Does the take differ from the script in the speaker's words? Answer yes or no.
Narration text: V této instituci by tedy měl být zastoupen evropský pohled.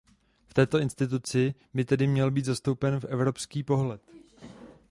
no